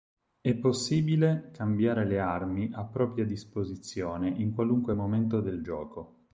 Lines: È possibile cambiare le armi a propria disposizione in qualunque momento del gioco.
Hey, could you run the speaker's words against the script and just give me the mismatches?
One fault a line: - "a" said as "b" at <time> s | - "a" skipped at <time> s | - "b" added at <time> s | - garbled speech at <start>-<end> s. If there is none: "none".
none